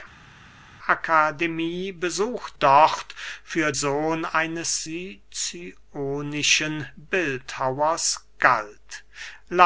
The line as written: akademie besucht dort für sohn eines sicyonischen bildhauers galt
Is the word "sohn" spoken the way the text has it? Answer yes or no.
yes